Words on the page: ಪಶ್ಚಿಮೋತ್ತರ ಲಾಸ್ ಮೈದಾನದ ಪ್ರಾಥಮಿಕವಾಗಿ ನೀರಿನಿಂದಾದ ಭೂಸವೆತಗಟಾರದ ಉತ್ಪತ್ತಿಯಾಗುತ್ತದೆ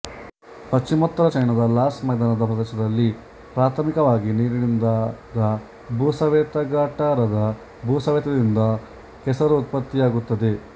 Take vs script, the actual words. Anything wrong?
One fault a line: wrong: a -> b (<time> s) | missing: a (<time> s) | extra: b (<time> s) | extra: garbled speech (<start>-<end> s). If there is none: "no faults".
extra: ಚೈನಾದ (1.3 s)
extra: ಪ್ರದೇಶದಲ್ಲಿ (2.5 s)
extra: ಭೂಸವೆತದಿಂದ ಕೆಸರು (7.9 s)